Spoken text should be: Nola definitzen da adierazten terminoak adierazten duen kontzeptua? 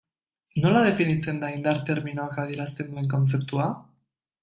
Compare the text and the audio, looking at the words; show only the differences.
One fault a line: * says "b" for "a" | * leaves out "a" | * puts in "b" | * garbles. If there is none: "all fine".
* says "indar" for "adierazten"